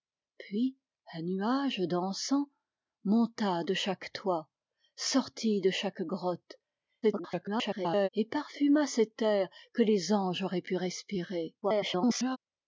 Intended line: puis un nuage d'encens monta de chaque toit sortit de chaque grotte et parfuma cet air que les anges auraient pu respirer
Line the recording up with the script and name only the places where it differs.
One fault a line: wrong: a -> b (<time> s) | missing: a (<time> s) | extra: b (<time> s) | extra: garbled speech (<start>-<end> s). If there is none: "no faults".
extra: garbled speech (7.0-8.1 s)
extra: garbled speech (11.6-12.4 s)